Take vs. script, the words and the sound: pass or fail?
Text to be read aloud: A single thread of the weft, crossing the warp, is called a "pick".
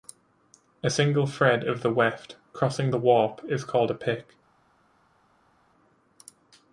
pass